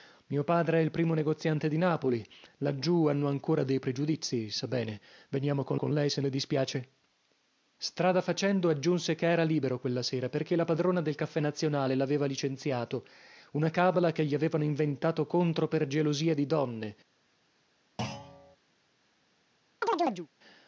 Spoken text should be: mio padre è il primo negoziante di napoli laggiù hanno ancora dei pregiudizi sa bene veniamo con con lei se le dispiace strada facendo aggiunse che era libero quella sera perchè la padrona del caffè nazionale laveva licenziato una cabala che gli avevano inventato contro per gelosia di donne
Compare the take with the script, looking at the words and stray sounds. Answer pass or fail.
fail